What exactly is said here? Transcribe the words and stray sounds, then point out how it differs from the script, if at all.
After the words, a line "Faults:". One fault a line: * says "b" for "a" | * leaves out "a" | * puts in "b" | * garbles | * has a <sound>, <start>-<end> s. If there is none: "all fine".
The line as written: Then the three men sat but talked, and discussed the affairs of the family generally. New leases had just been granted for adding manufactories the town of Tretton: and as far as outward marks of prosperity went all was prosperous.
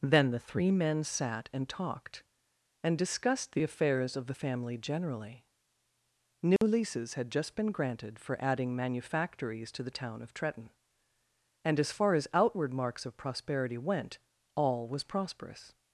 Then the three men sat and talked, and discussed the affairs of the family generally. New leases had just been granted for adding manufactories to the town of Tretton: and as far as outward marks of prosperity went all was prosperous.
Faults:
* says "and" for "but"
* has a dropout, 6.6-6.6 s
* puts in "to"